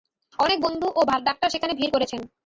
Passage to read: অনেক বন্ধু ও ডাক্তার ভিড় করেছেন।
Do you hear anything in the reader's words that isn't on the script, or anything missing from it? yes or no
yes